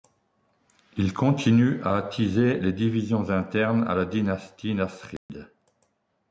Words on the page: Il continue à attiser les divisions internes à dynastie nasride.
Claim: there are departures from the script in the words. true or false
true